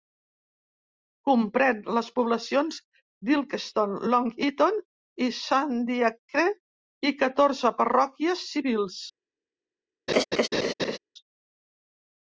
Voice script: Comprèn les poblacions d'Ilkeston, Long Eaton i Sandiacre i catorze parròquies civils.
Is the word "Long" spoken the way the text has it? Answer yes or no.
yes